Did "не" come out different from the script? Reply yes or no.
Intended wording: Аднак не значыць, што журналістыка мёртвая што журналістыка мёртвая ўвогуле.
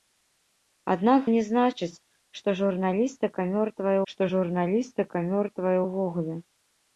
no